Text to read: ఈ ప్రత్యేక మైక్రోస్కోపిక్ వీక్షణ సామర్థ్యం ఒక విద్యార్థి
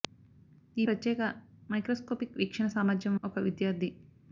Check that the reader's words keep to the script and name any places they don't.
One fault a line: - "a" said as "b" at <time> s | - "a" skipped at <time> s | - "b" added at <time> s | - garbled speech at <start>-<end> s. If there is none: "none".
none